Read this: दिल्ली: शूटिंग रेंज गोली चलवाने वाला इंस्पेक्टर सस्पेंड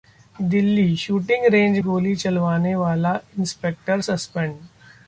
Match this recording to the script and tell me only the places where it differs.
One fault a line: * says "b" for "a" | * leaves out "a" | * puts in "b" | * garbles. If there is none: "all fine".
all fine